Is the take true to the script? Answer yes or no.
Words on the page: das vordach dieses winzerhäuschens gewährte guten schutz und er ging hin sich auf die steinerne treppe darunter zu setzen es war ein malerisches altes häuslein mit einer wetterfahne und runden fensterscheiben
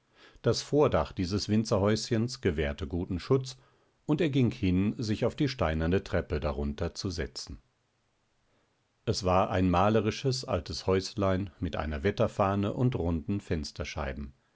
yes